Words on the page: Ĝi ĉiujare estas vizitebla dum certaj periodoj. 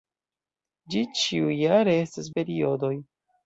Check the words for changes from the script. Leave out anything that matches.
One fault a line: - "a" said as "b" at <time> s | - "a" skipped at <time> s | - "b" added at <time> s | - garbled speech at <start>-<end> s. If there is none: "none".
- "vizitebla dum certaj" skipped at 2.3 s